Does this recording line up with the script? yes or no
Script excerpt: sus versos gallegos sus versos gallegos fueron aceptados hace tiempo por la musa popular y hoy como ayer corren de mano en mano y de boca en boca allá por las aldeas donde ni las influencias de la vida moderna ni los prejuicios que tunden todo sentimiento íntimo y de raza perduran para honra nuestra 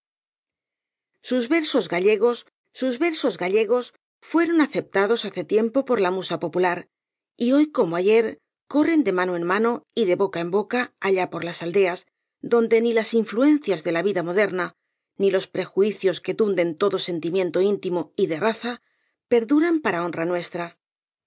yes